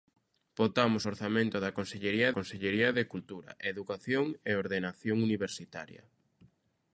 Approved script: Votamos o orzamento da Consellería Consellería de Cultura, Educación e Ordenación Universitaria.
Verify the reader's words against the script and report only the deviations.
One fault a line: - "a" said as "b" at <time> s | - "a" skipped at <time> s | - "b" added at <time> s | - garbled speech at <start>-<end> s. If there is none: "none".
none